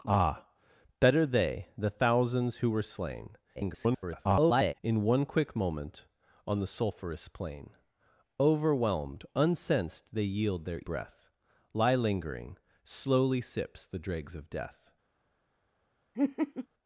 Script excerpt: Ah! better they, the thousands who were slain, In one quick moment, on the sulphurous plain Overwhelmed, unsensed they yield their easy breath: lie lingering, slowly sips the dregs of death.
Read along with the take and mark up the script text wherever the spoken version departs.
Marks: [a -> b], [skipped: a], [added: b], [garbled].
Ah! better they, the thousands who were slain, [garbled] In one quick moment, on the sulphurous plain Overwhelmed, unsensed they yield their [skipped: easy] breath: lie lingering, slowly sips the dregs of death.